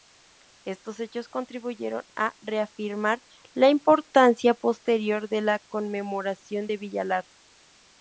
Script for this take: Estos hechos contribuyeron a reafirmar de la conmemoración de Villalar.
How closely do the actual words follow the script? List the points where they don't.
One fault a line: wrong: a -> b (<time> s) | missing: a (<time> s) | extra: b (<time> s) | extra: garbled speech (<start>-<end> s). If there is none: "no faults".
extra: la importancia posterior (3.5 s)